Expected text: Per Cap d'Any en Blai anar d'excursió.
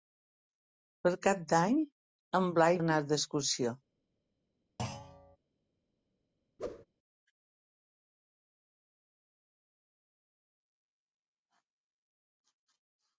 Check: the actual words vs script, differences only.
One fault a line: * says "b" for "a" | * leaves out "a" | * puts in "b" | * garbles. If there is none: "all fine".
all fine